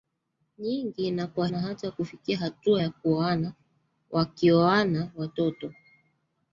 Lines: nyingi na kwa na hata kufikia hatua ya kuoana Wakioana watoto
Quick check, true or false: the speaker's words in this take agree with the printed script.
true